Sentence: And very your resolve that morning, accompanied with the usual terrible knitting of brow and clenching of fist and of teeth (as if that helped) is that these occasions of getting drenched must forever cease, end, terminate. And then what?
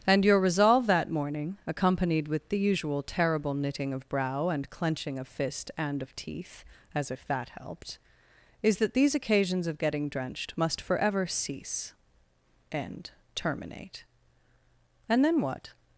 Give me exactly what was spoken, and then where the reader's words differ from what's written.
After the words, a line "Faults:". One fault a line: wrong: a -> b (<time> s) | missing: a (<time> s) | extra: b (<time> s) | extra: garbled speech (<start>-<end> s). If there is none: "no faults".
And your resolve that morning, accompanied with the usual terrible knitting of brow and clenching of fist and of teeth (as if that helped) is that these occasions of getting drenched must forever cease, end, terminate. And then what?
Faults:
missing: very (0.2 s)